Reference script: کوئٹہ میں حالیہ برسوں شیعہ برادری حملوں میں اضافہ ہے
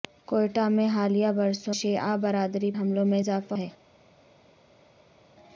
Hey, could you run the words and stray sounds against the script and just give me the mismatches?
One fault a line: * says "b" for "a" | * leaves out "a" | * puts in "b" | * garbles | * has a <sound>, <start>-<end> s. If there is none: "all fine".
all fine